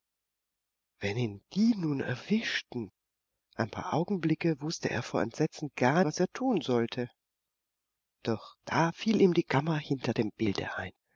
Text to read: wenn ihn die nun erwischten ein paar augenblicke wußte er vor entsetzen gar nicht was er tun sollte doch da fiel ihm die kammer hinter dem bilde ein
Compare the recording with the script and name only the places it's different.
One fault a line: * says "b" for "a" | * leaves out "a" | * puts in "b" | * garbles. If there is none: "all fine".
* leaves out "nicht"